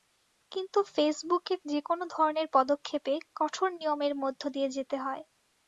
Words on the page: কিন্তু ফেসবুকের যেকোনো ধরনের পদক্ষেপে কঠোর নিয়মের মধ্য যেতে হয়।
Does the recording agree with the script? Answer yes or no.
no